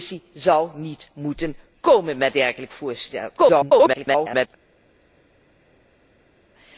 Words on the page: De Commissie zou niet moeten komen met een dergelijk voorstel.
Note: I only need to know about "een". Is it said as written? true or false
false